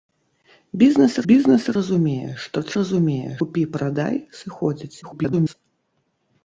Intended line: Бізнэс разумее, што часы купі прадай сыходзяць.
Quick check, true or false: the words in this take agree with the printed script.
false